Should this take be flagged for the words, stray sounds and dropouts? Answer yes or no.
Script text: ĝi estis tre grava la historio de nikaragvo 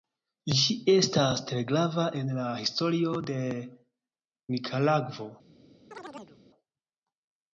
yes